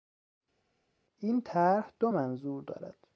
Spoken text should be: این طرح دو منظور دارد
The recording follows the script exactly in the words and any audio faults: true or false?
true